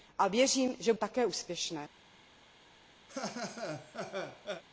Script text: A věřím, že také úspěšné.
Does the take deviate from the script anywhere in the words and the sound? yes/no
yes